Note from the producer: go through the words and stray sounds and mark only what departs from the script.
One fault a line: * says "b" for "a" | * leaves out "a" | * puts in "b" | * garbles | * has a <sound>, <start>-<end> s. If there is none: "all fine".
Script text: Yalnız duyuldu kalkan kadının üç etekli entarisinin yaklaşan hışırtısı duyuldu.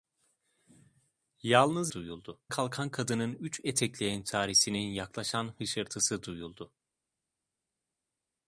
all fine